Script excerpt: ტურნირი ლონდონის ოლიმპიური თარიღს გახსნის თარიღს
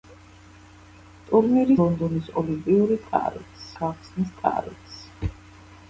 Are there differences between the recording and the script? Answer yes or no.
no